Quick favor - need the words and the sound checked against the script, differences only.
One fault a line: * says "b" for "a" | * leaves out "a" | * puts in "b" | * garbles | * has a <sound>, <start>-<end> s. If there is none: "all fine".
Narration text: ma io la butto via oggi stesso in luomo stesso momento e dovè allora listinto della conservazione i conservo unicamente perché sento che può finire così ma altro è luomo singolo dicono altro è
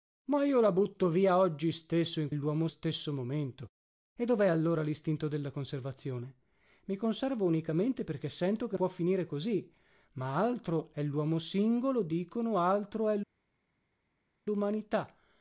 all fine